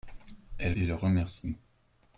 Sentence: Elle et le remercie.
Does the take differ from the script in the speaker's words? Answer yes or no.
no